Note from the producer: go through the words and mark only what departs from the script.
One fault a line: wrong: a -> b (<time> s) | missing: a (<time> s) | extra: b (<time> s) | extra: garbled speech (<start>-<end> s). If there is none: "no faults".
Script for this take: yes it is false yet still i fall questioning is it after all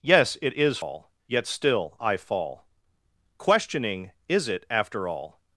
wrong: false -> all (0.8 s)